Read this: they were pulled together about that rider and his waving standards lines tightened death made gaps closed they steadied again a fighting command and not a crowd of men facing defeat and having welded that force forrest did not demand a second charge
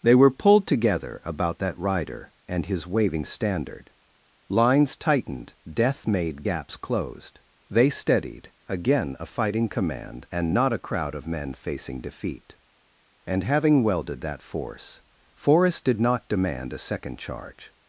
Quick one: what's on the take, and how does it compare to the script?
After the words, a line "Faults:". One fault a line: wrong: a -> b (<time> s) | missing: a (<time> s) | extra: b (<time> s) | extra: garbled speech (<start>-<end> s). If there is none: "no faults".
they were pulled together about that rider and his waving standard lines tightened death made gaps closed they steadied again a fighting command and not a crowd of men facing defeat and having welded that force forrest did not demand a second charge
Faults:
wrong: standards -> standard (3.2 s)